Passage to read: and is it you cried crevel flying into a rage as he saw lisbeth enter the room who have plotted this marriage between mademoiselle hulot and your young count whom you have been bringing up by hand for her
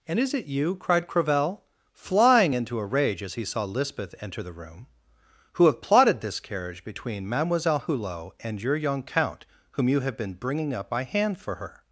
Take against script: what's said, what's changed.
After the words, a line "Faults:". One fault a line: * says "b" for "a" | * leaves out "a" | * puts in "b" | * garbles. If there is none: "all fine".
and is it you cried crevel flying into a rage as he saw lisbeth enter the room who have plotted this carriage between mademoiselle hulot and your young count whom you have been bringing up by hand for her
Faults:
* says "carriage" for "marriage"